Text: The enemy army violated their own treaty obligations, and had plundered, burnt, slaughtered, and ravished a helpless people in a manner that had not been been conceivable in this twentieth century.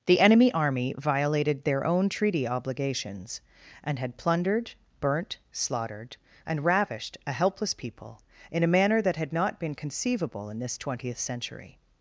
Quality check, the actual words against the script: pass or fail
fail